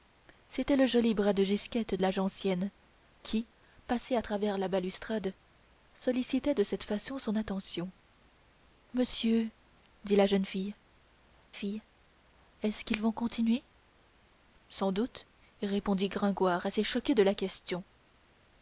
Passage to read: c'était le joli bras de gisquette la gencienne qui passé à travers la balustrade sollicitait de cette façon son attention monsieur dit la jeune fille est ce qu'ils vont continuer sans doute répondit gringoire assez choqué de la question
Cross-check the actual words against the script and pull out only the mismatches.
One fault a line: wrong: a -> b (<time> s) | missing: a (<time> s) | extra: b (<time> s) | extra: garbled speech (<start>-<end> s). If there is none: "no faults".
extra: fille (11.5 s)